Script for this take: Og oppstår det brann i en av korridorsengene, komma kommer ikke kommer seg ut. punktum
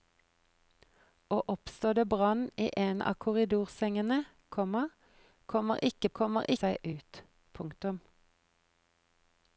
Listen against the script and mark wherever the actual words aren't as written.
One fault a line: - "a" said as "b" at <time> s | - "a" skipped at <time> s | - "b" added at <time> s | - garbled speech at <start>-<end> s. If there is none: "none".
none